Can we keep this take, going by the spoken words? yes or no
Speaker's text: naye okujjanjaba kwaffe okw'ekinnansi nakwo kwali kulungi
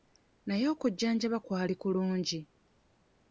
no